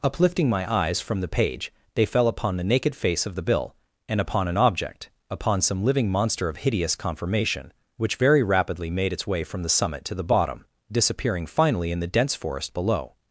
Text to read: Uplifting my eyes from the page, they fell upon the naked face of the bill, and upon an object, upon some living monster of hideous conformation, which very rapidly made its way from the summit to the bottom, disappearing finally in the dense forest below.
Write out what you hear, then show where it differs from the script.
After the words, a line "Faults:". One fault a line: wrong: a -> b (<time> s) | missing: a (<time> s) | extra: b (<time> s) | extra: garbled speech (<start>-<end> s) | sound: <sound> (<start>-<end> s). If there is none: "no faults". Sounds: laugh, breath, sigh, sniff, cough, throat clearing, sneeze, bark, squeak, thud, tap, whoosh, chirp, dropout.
Uplifting my eyes from the page, they fell upon the naked face of the bill, and upon an object, upon some living monster of hideous conformation, which very rapidly made its way from the summit to the bottom, disappearing finally in the dense forest below.
Faults:
no faults